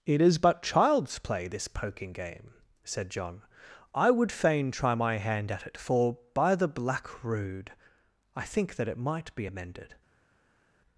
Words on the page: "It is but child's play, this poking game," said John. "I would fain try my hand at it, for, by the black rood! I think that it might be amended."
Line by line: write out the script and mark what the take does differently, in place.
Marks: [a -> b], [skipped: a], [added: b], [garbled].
"It is but child's play, this poking game," said John. "I would fain try my hand at it, for, by the black rood! I think that it might be amended."